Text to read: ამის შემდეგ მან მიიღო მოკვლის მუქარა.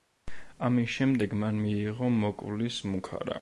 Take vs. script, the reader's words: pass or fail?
pass